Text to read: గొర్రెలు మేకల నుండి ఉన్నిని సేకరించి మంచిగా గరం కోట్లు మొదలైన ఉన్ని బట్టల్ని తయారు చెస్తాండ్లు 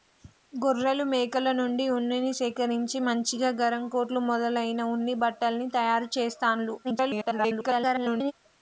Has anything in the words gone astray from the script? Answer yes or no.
yes